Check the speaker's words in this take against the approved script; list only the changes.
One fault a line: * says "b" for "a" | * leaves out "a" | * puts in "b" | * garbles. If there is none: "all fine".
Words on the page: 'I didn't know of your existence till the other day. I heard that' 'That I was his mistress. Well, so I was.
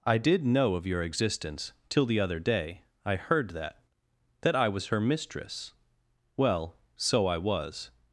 * says "did" for "didn't"
* says "her" for "his"